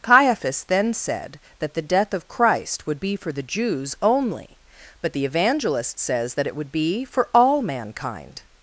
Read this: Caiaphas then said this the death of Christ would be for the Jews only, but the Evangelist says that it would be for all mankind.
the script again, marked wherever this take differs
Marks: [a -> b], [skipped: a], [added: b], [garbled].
Caiaphas then said [this -> that] the death of Christ would be for the Jews only, but the Evangelist says that it would be for all mankind.